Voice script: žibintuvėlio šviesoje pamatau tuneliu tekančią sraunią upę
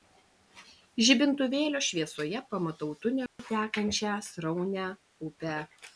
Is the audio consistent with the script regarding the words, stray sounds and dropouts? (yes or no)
no